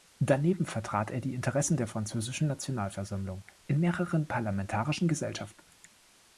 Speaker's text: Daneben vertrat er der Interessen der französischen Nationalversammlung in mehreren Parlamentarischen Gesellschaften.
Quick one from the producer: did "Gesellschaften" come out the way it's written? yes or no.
yes